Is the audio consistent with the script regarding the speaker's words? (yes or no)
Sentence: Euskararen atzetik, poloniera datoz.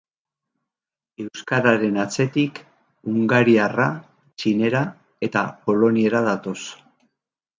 no